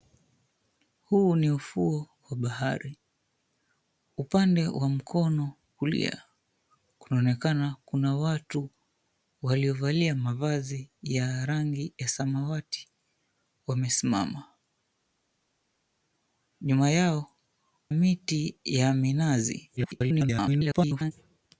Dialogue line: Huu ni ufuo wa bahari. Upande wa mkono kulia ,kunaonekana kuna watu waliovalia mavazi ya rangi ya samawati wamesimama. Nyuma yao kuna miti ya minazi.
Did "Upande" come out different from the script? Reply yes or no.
no